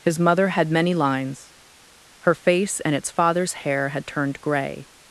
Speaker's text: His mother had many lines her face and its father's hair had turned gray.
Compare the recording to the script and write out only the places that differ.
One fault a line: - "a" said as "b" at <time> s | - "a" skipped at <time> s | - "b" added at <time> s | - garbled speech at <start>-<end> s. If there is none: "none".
none